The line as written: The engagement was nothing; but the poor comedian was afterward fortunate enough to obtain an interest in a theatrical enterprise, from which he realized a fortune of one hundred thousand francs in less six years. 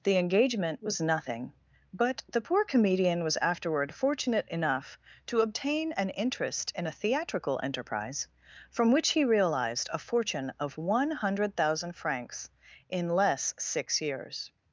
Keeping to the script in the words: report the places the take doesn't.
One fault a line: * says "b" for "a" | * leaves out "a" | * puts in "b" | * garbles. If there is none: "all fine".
all fine